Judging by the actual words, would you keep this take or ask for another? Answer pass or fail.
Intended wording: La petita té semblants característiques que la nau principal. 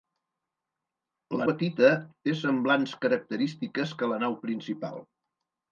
pass